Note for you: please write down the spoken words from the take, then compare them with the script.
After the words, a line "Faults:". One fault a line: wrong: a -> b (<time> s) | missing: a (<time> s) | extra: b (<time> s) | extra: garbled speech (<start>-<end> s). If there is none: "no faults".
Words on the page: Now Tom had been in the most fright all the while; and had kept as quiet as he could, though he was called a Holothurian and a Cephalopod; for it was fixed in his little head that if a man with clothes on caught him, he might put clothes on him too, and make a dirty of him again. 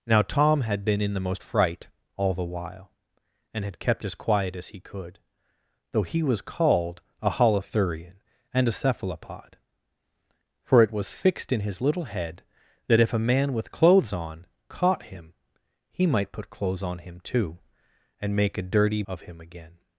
Now Tom had been in the most fright all the while; and had kept as quiet as he could, though he was called a Holothurian and a Cephalopod; for it was fixed in his little head that if a man with clothes on caught him, he might put clothes on him too, and make a dirty of him again.
Faults:
no faults